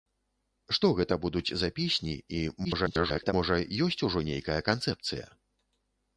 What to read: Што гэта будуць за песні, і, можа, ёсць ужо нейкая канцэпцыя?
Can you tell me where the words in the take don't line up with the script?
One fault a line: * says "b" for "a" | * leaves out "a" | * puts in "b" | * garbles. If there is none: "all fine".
* garbles